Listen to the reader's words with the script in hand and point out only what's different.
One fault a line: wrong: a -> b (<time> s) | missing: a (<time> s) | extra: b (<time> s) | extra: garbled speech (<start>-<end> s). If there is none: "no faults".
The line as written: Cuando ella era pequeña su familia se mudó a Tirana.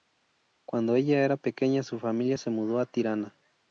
no faults